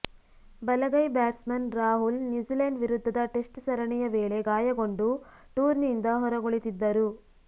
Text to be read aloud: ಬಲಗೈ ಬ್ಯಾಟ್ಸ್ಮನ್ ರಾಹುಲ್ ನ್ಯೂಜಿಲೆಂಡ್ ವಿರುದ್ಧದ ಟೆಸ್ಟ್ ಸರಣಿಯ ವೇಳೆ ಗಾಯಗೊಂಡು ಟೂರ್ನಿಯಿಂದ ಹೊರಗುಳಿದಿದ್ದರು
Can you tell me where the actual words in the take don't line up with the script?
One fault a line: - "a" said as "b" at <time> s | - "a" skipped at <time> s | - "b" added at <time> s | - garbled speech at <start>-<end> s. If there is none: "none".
none